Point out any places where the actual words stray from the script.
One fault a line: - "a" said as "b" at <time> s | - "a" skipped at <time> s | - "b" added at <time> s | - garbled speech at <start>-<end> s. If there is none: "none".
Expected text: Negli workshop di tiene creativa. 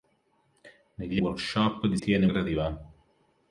none